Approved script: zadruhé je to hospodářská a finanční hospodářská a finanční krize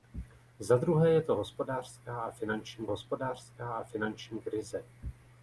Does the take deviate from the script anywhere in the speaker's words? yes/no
no